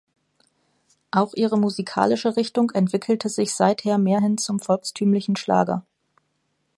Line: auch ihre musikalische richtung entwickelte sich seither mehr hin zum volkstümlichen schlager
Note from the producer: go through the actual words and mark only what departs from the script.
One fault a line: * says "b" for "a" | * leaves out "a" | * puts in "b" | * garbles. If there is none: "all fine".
all fine